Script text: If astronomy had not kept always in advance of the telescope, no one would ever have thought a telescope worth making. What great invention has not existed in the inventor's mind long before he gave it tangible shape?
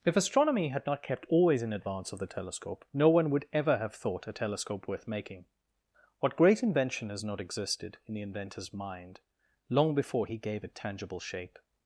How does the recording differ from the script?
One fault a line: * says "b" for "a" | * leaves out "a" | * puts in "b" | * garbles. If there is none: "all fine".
all fine